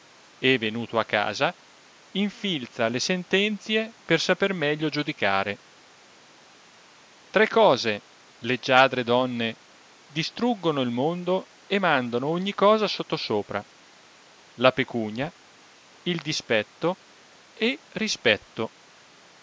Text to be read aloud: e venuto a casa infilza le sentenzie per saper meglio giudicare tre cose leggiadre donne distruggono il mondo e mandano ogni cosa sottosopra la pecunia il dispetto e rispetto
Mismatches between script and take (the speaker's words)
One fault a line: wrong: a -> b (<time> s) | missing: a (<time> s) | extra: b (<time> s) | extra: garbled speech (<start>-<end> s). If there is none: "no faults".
no faults